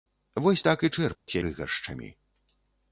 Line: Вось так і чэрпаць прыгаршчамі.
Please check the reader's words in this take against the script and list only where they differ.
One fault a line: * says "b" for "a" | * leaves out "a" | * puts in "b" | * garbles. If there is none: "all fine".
all fine